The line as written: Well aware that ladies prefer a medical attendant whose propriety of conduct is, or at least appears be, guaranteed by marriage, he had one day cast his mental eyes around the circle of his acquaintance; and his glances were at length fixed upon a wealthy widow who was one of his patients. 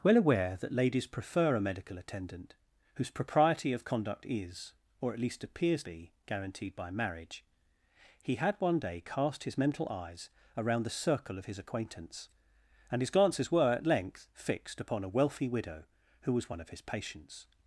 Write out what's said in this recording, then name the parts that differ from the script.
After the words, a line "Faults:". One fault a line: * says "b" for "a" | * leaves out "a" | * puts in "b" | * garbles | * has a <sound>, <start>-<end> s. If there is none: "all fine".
Well aware that ladies prefer a medical attendant whose propriety of conduct is, or at least appears be, guaranteed by marriage, he had one day cast his mental eyes around the circle of his acquaintance; and his glances were at length fixed upon a wealthy widow who was one of his patients.
Faults:
all fine